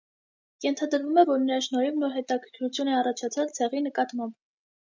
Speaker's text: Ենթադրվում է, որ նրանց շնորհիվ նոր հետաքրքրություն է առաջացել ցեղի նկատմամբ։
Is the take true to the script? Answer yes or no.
no